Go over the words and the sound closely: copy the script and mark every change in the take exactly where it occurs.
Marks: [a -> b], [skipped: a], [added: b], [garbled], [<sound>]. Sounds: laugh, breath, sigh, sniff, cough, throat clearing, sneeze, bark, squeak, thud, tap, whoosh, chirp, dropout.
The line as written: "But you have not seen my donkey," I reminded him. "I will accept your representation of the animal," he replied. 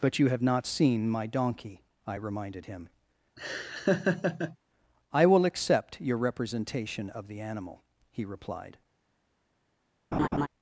"But you have not seen my donkey," I reminded him. [laugh] "I will accept your representation of the animal," he replied. [laugh]